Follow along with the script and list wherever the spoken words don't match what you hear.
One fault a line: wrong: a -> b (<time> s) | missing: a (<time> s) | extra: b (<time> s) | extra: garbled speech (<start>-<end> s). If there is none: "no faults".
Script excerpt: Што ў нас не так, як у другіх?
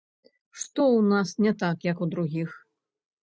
no faults